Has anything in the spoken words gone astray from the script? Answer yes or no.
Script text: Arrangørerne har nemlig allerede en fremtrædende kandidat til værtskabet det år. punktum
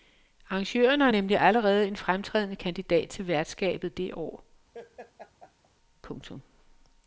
no